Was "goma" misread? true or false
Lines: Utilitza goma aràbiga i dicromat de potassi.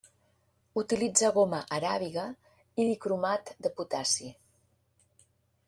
false